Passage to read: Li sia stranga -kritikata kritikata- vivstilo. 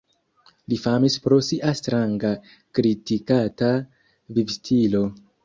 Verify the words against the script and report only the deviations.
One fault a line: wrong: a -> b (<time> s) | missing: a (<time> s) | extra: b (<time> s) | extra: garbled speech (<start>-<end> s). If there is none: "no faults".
extra: famis pro (0.8 s)
missing: kritikata (3.8 s)